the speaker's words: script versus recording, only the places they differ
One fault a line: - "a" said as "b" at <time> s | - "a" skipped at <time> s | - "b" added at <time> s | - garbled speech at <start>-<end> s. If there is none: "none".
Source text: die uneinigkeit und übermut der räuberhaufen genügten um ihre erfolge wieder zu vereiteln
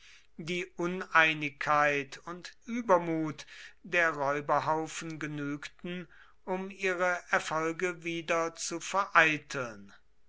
none